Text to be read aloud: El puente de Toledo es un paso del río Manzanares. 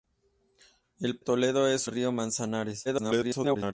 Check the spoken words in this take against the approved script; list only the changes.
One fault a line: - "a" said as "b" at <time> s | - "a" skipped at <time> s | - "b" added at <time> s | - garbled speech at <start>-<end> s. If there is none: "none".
- "puente de" skipped at 1.2 s
- "un paso del" skipped at 1.9 s
- garbled speech at 2.9-3.7 s